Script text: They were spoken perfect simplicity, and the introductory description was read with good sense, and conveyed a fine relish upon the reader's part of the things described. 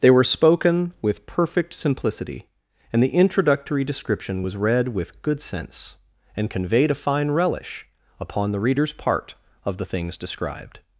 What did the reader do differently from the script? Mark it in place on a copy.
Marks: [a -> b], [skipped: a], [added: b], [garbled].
They were spoken [added: with] perfect simplicity, and the introductory description was read with good sense, and conveyed a fine relish upon the reader's part of the things described.